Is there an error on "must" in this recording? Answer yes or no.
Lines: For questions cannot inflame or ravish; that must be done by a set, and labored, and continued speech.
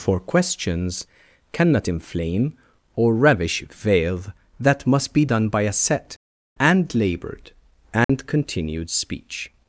no